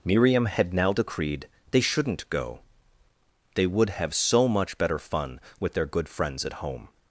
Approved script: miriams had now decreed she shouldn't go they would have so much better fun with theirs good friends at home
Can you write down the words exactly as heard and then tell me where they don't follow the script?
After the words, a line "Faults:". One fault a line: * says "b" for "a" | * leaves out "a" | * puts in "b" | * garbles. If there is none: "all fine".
miriam had now decreed they shouldn't go they would have so much better fun with their good friends at home
Faults:
* says "miriam" for "miriams"
* says "they" for "she"
* says "their" for "theirs"